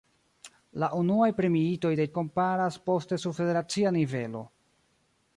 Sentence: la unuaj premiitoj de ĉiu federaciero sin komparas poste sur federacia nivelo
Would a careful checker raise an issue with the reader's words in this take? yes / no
yes